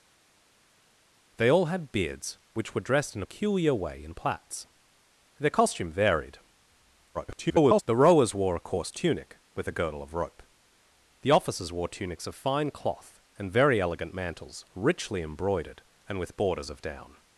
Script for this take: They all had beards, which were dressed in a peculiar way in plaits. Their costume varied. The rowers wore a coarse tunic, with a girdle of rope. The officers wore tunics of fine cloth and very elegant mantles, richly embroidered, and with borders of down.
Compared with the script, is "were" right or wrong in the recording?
right